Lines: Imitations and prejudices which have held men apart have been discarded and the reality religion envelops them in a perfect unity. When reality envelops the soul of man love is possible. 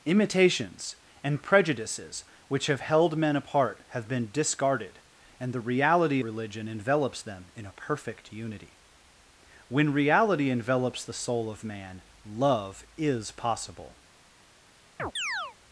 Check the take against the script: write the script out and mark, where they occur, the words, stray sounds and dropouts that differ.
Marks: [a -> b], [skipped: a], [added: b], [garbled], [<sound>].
Imitations and prejudices which have held men apart have been discarded and the reality religion envelops them in a perfect unity. When reality envelops the soul of man love is possible. [chirp]